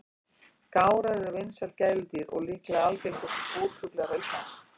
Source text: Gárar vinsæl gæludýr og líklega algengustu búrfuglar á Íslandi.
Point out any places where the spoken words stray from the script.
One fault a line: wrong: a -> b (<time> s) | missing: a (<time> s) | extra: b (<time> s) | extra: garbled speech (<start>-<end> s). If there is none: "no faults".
extra: eru (1.2 s)